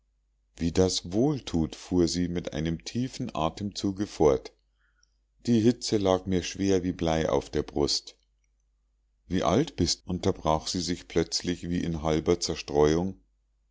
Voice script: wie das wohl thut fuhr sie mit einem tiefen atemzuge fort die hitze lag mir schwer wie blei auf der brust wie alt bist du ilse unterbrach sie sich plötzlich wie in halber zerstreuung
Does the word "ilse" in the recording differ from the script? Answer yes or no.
yes